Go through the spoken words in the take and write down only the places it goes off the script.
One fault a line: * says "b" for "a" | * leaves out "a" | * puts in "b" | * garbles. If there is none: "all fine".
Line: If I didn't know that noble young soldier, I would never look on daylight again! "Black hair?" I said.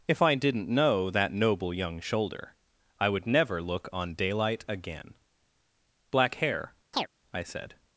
* says "shoulder" for "soldier"